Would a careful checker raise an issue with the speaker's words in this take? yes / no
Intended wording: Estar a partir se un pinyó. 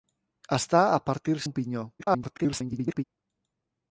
yes